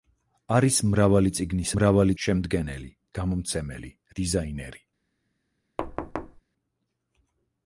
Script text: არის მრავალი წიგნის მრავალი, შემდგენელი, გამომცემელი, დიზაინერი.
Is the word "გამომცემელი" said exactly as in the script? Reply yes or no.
yes